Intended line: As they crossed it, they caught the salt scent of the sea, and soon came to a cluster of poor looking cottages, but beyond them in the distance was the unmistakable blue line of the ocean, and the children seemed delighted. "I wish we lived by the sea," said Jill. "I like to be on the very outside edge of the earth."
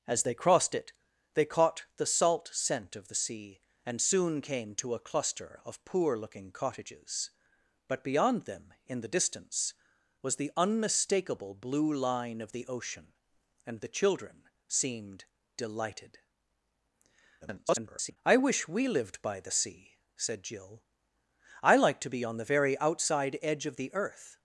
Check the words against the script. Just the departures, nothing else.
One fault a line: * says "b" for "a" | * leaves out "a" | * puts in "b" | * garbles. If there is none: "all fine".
* garbles